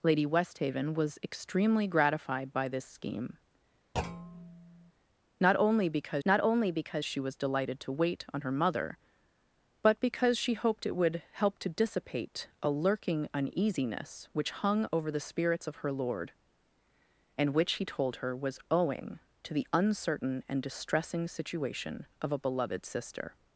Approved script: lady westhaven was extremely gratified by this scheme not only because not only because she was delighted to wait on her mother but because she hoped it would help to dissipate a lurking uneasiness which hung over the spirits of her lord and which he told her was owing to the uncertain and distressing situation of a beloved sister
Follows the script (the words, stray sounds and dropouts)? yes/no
no